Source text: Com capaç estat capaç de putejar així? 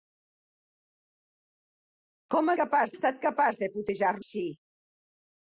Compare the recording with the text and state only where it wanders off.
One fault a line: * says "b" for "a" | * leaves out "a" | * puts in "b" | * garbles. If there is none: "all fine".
all fine